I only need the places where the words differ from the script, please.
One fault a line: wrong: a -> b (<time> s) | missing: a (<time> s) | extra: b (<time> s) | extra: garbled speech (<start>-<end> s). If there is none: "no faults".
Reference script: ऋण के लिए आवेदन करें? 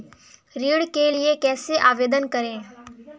extra: कैसे (1.3 s)